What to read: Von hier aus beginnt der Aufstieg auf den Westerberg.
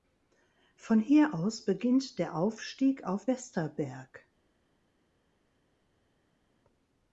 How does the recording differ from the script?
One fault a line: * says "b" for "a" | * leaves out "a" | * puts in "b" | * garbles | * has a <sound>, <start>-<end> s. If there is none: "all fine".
* leaves out "den"